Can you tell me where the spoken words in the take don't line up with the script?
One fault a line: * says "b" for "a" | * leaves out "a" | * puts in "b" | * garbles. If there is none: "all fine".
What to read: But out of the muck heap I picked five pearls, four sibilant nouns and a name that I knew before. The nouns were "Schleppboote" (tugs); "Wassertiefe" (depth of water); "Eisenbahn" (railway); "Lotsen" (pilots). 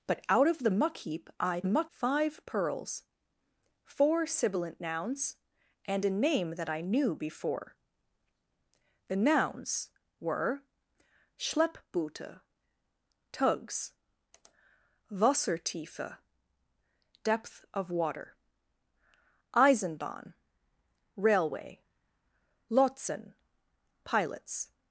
* says "muck" for "picked"